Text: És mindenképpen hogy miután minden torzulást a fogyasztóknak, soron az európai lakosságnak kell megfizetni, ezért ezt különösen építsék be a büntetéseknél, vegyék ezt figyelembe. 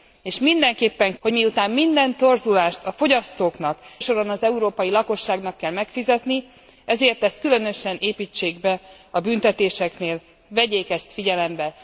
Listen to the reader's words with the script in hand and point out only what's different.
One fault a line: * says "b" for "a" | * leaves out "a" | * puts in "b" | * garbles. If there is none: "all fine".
all fine